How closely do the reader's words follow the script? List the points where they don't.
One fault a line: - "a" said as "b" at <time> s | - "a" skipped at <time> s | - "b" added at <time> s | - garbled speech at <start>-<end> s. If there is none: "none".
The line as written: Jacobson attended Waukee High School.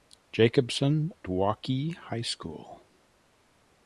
- "attended" skipped at 1.1 s